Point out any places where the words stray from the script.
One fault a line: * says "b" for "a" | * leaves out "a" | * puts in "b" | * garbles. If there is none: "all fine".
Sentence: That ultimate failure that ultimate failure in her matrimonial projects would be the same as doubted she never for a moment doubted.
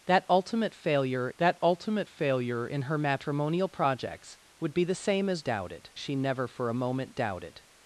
all fine